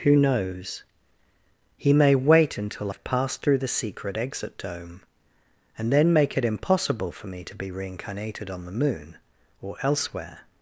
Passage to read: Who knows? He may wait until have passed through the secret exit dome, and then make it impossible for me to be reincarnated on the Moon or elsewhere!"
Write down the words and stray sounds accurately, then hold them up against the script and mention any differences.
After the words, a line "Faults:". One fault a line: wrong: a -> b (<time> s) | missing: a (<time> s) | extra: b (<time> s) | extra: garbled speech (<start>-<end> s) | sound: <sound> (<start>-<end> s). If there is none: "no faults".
Who knows? He may wait until have passed through the secret exit dome, and then make it impossible for me to be reincarnated on the Moon or elsewhere!"
Faults:
no faults